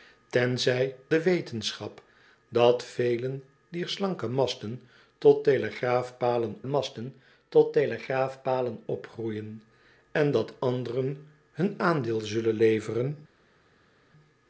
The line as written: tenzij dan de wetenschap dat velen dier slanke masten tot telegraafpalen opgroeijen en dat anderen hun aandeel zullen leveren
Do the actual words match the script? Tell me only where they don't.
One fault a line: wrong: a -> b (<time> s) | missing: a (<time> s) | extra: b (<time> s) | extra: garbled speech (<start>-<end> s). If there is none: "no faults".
missing: dan (0.9 s)
extra: masten tot telegraafpalen (6.6 s)